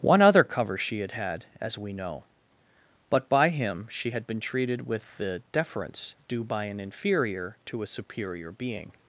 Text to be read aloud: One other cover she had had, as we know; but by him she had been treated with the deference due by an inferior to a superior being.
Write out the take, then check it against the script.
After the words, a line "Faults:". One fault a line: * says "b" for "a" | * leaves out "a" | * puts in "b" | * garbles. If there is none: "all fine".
One other cover she had had, as we know; but by him she had been treated with the deference due by an inferior to a superior being.
Faults:
all fine